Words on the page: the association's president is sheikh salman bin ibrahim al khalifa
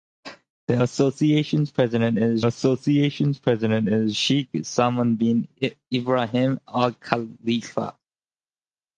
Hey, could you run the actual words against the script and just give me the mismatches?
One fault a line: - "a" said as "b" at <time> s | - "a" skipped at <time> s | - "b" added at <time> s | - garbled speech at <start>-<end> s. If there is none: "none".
- "association's president is" added at 2.5 s